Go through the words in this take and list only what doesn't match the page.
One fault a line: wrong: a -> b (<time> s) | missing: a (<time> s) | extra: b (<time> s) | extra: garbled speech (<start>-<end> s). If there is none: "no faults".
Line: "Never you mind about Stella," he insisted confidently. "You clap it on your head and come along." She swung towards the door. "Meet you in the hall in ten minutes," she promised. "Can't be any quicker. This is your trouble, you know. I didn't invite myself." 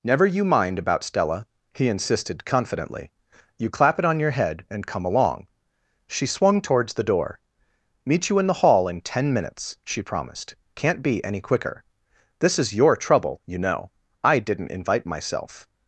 no faults